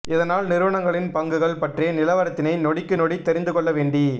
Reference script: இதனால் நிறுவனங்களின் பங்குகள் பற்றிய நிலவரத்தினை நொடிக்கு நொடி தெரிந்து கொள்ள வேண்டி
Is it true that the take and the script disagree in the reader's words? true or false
false